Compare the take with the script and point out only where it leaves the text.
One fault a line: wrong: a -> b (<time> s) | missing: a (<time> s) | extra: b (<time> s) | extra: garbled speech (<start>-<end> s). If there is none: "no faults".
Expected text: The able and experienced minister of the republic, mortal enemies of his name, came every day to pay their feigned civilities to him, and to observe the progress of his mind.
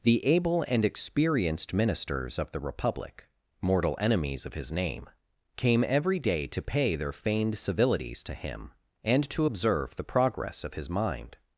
wrong: minister -> ministers (1.8 s)